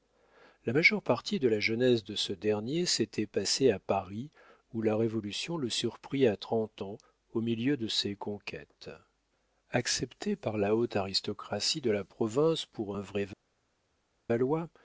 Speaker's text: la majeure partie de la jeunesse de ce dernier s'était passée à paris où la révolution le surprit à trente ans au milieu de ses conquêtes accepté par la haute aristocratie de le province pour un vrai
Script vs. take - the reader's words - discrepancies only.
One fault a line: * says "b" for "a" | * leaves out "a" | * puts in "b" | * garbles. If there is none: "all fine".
* says "la" for "le"